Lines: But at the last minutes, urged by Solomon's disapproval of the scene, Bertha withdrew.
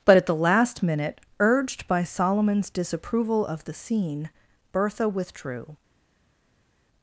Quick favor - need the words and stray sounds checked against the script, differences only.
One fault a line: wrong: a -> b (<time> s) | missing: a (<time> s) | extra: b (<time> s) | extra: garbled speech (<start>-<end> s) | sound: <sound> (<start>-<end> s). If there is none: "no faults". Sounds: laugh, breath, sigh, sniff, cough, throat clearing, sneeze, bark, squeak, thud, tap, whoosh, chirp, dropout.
wrong: minutes -> minute (0.8 s)